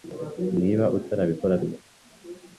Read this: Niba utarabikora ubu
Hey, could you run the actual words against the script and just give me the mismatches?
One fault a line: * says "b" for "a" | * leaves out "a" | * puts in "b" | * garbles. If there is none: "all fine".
all fine